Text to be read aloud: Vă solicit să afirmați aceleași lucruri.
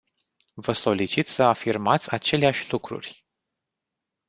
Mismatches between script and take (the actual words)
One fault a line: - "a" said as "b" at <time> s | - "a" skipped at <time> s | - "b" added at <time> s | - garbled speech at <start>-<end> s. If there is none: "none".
none